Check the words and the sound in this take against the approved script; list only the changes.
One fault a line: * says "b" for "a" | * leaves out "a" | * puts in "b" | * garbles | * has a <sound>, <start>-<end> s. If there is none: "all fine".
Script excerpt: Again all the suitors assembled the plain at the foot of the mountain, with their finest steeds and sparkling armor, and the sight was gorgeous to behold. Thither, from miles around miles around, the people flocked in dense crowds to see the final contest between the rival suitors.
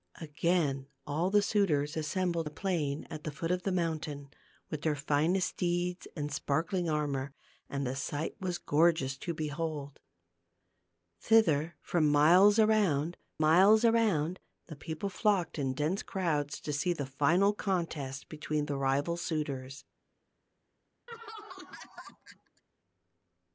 * has a laugh, 21.1-22.6 s